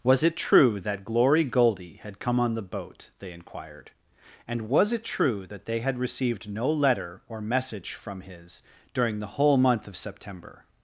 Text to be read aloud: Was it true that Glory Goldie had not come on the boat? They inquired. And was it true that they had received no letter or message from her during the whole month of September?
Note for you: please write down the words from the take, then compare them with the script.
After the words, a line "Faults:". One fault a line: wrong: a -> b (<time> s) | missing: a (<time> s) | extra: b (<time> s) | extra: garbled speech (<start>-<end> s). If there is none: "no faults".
Was it true that Glory Goldie had come on the boat? They inquired. And was it true that they had received no letter or message from his during the whole month of September?
Faults:
missing: not (2.2 s)
wrong: her -> his (8.2 s)